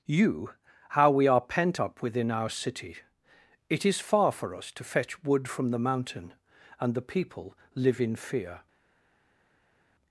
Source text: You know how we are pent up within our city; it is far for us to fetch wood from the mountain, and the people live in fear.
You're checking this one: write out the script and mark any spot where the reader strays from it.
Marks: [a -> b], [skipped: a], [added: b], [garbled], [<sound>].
You [skipped: know] how we are pent up within our city; it is far for us to fetch wood from the mountain, and the people live in fear.